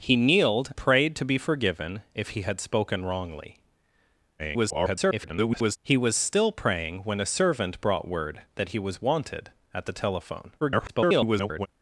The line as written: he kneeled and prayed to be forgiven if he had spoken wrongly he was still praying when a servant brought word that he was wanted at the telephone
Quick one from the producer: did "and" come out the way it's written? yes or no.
no